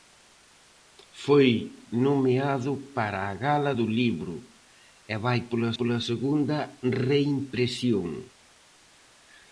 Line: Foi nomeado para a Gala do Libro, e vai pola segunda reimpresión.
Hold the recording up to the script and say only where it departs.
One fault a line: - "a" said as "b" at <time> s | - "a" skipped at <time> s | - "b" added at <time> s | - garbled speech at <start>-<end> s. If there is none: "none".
- "pola" added at 5.8 s